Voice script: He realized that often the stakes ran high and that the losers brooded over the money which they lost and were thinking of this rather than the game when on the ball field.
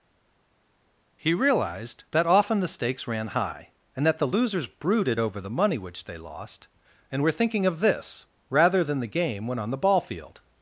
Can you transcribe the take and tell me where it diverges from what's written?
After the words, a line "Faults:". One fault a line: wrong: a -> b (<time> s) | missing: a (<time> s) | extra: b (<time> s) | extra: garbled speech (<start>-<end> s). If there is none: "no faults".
He realized that often the stakes ran high and that the losers brooded over the money which they lost and were thinking of this rather than the game when on the ball field.
Faults:
no faults